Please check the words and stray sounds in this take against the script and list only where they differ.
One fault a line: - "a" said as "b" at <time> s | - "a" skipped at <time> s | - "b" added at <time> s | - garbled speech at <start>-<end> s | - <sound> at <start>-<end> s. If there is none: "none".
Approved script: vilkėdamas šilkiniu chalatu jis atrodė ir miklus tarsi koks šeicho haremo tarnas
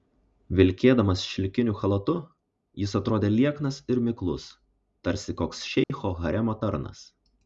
- "lieknas" added at 3.3 s
- dropout at 5.8-5.9 s